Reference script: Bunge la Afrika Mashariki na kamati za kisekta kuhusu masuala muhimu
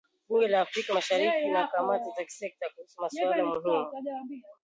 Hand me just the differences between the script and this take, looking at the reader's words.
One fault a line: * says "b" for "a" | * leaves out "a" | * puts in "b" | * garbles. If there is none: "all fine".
all fine